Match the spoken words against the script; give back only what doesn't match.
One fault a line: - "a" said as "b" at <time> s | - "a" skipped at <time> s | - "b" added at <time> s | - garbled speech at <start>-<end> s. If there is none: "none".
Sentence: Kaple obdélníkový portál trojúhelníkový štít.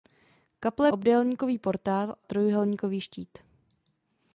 none